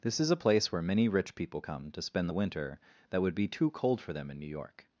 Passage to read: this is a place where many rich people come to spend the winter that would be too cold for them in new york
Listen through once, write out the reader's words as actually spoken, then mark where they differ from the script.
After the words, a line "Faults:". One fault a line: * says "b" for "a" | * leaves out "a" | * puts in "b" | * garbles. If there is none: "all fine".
this is a place where many rich people come to spend the winter that would be too cold for them in new york
Faults:
all fine